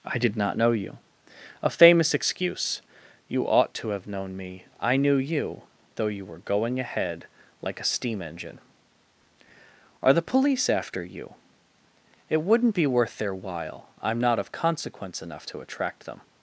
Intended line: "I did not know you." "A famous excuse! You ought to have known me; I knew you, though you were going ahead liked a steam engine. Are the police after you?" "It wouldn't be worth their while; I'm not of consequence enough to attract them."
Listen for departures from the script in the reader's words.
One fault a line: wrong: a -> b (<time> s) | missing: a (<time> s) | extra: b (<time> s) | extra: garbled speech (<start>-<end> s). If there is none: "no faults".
wrong: liked -> like (7.6 s)